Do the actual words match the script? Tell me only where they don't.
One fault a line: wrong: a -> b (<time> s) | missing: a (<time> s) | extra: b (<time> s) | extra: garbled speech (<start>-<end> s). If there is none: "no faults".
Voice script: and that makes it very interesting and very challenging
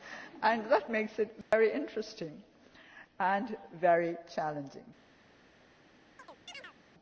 no faults